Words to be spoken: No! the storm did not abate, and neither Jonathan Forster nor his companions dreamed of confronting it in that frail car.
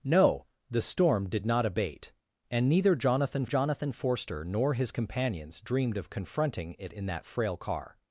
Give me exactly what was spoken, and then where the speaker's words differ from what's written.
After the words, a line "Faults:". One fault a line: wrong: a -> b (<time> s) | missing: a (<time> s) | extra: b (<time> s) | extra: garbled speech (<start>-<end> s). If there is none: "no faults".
No! the storm did not abate, and neither Jonathan Jonathan Forster nor his companions dreamed of confronting it in that frail car.
Faults:
extra: Jonathan (3.4 s)